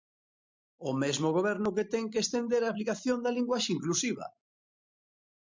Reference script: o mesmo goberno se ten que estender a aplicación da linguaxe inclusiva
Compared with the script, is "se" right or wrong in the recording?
wrong